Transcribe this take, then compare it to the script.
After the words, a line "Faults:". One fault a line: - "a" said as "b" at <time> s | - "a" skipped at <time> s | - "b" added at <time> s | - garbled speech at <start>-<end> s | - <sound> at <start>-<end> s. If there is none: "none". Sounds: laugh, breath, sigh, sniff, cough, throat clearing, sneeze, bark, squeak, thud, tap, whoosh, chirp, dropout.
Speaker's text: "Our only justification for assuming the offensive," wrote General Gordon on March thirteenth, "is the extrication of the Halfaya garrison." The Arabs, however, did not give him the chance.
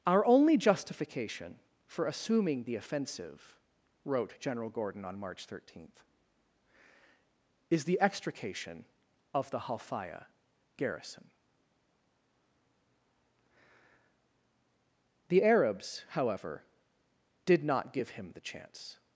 "Our only justification for assuming the offensive," wrote General Gordon on March thirteenth, "is the extrication of the Halfaya garrison." The Arabs, however, did not give him the chance.
Faults:
none